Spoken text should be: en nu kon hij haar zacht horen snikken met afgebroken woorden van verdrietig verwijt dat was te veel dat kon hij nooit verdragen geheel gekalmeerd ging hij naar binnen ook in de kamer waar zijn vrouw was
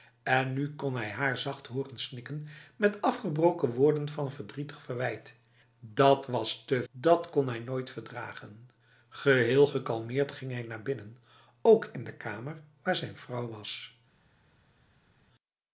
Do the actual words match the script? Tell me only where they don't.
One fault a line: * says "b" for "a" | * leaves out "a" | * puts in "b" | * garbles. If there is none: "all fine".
* leaves out "veel"